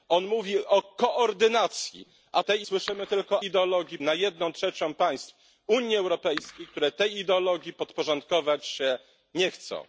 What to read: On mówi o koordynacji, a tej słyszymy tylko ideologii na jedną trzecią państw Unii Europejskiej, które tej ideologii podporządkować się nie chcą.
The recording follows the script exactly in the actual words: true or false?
true